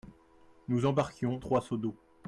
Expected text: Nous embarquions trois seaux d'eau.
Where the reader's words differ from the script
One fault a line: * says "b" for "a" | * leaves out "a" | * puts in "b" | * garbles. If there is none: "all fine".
all fine